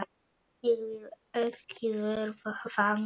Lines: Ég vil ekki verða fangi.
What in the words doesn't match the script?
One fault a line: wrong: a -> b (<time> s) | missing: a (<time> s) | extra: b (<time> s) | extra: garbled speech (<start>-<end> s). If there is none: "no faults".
no faults